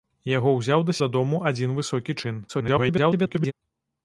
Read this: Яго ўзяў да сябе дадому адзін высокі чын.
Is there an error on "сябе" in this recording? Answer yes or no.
yes